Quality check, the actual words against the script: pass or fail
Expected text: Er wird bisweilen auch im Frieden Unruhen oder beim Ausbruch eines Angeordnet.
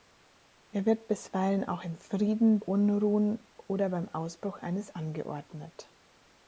pass